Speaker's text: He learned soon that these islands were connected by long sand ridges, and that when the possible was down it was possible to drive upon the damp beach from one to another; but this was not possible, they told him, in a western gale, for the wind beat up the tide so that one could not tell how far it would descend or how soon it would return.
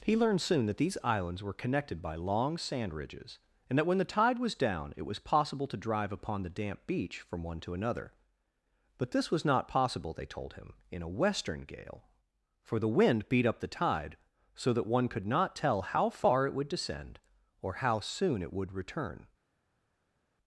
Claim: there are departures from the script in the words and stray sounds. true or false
true